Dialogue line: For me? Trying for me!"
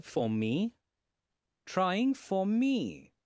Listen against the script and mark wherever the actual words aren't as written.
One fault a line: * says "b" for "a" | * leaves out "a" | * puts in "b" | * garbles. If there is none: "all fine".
all fine